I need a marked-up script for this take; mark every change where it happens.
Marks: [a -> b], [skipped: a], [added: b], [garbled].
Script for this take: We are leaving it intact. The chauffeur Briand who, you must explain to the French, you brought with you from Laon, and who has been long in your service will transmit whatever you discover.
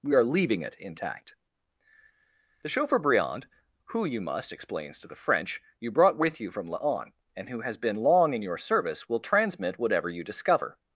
We are leaving it intact. The chauffeur Briand who, you must [explain -> explains] to the French, you brought with you from Laon, and who has been long in your service will transmit whatever you discover.